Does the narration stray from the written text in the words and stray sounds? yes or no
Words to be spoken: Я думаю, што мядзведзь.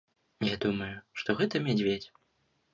yes